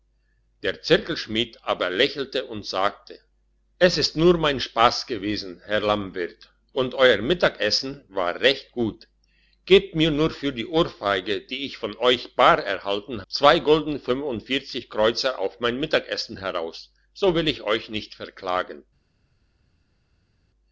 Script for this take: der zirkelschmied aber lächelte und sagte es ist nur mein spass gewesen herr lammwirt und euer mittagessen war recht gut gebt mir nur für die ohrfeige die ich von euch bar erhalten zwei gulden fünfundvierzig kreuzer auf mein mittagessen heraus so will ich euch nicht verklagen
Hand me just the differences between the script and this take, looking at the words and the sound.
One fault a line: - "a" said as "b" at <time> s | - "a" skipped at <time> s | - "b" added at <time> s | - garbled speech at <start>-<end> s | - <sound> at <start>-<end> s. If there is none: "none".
none